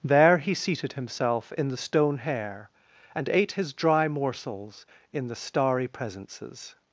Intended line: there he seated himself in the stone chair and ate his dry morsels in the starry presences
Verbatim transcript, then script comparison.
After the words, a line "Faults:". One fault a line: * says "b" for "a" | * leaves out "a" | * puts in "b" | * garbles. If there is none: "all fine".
there he seated himself in the stone hair and ate his dry morsels in the starry presences
Faults:
* says "hair" for "chair"